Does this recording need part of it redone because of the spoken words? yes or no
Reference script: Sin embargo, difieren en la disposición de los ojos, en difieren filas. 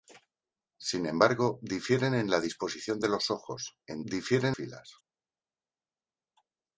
no